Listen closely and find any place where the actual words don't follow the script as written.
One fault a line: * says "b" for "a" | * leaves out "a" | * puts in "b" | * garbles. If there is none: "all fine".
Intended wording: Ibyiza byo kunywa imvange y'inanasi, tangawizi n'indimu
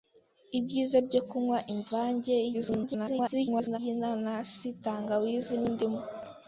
* garbles